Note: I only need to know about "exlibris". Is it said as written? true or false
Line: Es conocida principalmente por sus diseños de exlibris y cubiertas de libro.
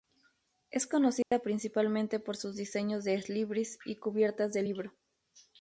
true